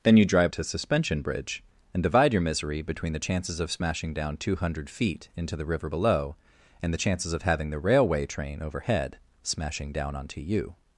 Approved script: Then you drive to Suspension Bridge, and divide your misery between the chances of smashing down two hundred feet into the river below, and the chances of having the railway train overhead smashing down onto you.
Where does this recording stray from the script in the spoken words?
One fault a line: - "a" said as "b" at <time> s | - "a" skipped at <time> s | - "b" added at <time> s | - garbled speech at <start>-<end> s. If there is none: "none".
none